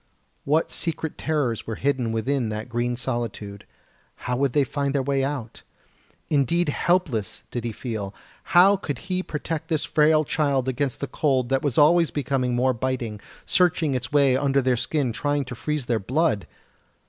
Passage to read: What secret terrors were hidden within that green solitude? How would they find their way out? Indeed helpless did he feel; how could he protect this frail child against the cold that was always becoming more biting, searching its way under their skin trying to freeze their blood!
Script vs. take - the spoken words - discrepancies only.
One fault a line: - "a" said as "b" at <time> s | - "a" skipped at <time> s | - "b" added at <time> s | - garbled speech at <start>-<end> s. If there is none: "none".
none